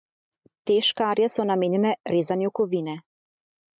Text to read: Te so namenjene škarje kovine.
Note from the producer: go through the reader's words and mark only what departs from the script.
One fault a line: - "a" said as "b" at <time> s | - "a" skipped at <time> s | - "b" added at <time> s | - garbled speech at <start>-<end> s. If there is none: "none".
- "škarje" added at 0.9 s
- "škarje" said as "rezanju" at 2.2 s